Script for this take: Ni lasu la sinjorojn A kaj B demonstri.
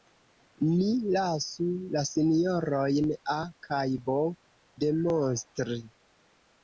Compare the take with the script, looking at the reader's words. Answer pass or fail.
pass